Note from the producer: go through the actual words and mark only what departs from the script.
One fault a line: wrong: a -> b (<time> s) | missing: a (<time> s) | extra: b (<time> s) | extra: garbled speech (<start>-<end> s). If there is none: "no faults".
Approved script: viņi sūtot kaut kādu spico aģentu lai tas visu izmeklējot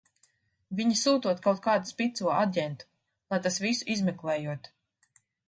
no faults